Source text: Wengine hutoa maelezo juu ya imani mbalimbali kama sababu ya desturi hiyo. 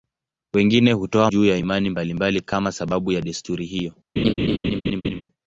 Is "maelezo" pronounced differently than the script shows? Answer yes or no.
yes